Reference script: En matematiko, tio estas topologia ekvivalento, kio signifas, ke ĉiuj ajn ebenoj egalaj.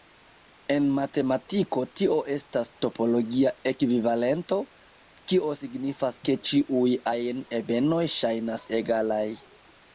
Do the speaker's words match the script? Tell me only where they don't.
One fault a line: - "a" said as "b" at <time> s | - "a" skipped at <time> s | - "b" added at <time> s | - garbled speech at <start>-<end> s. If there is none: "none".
- "ŝajnas" added at 8.2 s